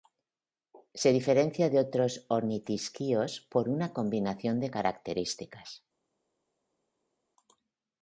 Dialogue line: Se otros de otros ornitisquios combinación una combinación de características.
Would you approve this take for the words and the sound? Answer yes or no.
no